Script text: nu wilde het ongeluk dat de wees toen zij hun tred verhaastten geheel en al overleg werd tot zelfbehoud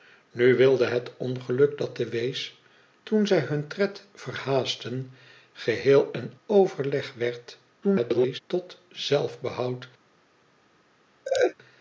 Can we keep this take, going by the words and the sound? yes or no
no